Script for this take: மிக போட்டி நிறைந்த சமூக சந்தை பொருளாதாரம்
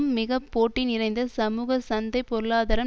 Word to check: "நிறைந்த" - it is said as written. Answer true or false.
true